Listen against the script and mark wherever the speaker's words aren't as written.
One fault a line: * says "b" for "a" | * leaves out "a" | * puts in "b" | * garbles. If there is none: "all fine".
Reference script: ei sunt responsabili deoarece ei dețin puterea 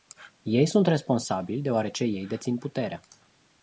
all fine